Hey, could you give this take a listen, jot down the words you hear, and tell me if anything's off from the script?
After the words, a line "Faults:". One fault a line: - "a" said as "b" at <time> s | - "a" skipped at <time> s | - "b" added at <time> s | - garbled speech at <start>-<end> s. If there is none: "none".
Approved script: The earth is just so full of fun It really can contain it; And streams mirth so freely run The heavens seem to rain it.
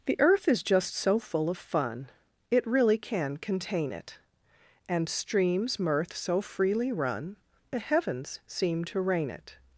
The earth is just so full of fun It really can contain it; And streams mirth so freely run The heavens seem to rain it.
Faults:
none